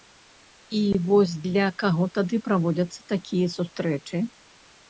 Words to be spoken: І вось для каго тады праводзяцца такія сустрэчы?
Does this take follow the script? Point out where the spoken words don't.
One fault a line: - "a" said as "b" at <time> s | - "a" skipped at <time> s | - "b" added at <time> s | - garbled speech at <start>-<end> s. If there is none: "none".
none